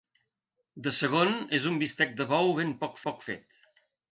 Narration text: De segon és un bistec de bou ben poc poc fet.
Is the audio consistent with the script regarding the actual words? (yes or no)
yes